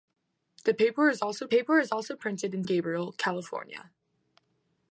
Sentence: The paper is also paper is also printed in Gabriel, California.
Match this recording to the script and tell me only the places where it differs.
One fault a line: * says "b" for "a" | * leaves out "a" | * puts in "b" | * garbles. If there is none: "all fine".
all fine